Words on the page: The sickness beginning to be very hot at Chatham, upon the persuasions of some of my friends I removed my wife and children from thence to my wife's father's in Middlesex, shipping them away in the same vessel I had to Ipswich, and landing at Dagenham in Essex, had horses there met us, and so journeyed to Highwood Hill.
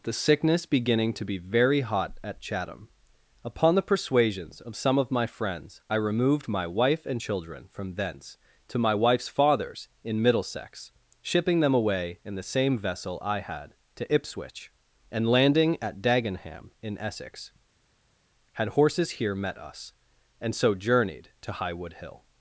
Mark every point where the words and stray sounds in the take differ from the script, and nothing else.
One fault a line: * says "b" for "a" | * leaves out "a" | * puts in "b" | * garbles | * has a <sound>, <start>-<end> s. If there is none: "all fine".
* says "here" for "there"